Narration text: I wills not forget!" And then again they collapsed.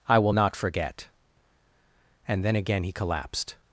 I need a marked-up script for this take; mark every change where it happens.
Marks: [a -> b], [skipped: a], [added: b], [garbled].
I [wills -> will] not forget!" And then again [they -> he] collapsed.